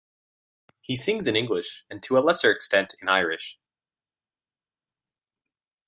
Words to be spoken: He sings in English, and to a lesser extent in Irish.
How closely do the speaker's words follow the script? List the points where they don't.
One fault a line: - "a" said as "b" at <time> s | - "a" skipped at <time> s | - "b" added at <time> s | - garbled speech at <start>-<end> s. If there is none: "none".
none